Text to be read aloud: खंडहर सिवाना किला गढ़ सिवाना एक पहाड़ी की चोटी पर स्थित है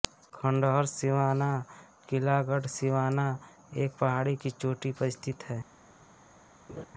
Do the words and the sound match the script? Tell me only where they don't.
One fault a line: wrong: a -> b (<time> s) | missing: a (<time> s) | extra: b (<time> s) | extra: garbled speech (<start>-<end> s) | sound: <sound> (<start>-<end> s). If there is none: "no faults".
sound: laugh (6.7-6.9 s)